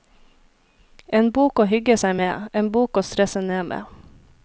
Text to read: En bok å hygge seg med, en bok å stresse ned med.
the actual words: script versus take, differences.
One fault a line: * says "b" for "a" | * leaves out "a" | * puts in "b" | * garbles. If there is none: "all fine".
all fine